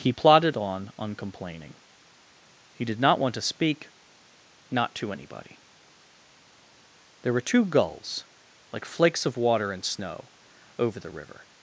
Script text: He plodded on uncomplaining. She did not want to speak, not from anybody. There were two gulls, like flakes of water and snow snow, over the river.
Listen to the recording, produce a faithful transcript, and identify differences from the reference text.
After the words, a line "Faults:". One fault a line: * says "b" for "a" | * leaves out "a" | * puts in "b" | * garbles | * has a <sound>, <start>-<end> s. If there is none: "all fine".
He plodded on uncomplaining. He did not want to speak, not to anybody. There were two gulls, like flakes of water and snow, over the river.
Faults:
* says "He" for "She"
* says "to" for "from"
* leaves out "snow"